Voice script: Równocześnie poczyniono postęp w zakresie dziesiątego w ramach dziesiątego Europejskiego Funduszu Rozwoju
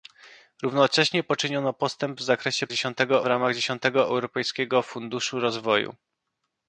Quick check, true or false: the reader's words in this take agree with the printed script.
true